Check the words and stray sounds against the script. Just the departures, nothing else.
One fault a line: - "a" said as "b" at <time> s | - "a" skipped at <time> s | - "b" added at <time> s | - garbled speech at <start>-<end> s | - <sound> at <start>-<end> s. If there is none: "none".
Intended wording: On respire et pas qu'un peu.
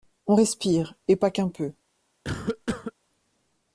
- cough at 2.2-2.9 s